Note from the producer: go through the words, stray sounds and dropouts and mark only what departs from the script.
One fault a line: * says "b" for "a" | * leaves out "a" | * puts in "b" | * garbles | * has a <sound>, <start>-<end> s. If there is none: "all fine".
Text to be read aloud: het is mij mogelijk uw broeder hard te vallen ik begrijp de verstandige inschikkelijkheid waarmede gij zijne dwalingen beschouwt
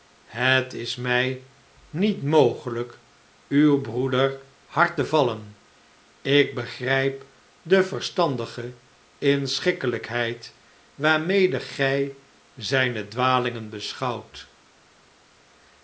* puts in "niet"